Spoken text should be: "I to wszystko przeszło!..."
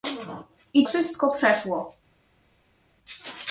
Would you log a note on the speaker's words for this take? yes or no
yes